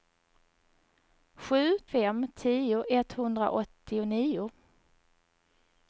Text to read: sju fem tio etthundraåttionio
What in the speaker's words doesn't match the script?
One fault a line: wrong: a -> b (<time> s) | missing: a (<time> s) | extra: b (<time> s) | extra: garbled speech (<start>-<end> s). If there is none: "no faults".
no faults